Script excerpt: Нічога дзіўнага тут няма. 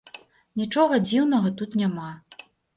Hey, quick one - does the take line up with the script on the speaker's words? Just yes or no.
yes